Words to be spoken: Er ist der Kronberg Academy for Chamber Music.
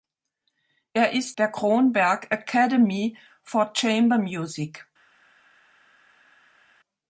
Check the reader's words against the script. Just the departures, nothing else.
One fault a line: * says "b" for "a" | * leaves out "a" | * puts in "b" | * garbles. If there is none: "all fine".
all fine